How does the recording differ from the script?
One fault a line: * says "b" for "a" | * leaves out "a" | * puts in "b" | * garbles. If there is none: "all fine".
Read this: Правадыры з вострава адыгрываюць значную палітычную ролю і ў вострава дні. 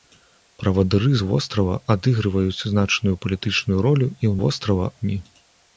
all fine